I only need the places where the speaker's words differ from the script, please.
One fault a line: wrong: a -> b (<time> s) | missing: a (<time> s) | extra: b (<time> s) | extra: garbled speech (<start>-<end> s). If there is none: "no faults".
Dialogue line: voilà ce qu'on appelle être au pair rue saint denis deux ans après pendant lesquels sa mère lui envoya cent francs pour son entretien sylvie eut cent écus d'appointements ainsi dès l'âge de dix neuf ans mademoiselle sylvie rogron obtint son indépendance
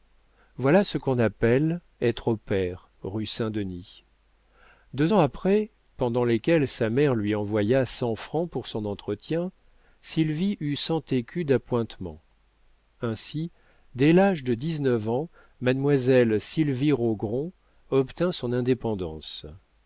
no faults